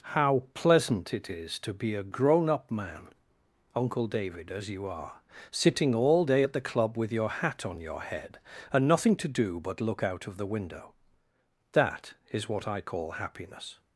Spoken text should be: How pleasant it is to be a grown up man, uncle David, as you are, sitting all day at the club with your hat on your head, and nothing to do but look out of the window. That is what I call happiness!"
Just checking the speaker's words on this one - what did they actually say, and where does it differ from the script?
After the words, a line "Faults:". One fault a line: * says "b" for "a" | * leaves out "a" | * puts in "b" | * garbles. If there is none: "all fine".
How pleasant it is to be a grown up man, uncle David, as you are, sitting all day at the club with your hat on your head, and nothing to do but look out of the window. That is what I call happiness!"
Faults:
all fine